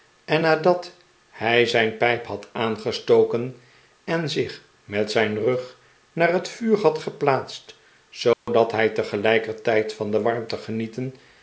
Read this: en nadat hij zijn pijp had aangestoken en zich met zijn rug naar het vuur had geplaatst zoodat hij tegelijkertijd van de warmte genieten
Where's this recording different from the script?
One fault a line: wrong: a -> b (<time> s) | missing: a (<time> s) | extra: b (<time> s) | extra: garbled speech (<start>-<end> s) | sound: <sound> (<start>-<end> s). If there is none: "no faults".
sound: dropout (8.3-8.5 s)